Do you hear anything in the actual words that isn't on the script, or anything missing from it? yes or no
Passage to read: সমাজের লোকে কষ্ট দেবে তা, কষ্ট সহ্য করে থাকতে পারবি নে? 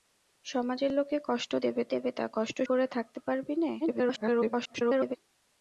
yes